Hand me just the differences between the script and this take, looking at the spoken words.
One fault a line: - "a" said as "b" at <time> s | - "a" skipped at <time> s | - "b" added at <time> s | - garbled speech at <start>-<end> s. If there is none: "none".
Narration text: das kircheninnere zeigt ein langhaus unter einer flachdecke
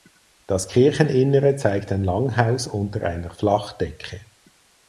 none